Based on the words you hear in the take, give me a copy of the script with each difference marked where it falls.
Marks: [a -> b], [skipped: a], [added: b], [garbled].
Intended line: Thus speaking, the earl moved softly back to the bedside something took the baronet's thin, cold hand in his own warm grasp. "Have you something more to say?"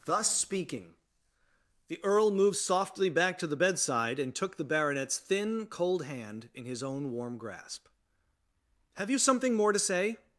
Thus speaking, the earl moved softly back to the bedside [something -> and] took the baronet's thin, cold hand in his own warm grasp. "Have you something more to say?"